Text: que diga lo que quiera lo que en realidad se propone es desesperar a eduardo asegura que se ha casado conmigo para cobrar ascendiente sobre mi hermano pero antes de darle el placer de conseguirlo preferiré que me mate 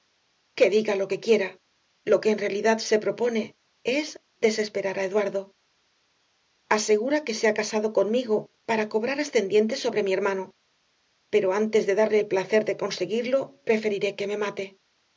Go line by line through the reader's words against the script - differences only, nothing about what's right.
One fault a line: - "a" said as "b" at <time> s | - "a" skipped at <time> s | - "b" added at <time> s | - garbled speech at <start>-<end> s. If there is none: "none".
none